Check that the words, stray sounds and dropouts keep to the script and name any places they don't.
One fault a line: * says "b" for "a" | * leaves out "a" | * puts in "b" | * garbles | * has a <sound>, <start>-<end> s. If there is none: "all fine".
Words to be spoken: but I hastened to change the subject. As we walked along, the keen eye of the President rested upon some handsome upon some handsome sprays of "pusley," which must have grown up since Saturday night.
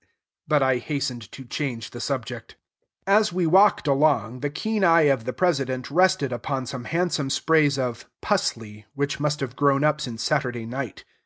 * leaves out "upon some handsome"